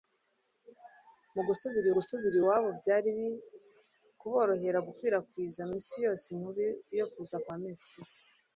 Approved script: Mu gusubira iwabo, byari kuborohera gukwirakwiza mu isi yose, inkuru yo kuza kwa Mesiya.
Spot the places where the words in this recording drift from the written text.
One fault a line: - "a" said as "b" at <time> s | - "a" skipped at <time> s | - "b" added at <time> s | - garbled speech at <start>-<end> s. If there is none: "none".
- "gusubira" added at 1.9 s